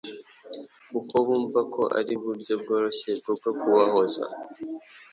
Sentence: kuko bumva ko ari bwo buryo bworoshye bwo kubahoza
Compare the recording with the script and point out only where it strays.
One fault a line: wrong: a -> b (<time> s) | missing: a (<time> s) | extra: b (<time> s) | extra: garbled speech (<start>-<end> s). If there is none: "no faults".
missing: bwo (2.1 s)
extra: bwo (3.4 s)